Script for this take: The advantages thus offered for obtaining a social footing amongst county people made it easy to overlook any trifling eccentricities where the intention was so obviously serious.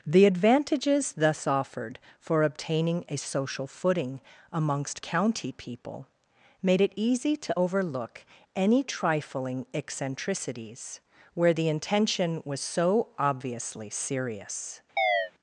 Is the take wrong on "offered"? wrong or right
right